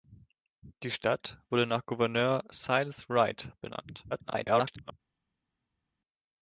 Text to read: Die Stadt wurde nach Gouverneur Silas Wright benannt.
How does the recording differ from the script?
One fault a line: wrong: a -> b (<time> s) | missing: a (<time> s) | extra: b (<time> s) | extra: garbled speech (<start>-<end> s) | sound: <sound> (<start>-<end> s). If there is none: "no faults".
extra: garbled speech (4.1-4.9 s)